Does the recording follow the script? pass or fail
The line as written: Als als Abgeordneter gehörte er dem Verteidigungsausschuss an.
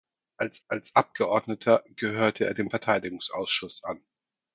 pass